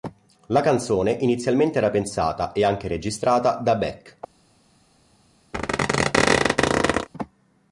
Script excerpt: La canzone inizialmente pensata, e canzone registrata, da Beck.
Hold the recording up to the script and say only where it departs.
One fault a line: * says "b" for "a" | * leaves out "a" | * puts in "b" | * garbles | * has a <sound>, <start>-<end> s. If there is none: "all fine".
* puts in "era"
* says "anche" for "canzone"
* has a squeak, 5.5-7.1 s